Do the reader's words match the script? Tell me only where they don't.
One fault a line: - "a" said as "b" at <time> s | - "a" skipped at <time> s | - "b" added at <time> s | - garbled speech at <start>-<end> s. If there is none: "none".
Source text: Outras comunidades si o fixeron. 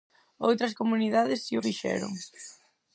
none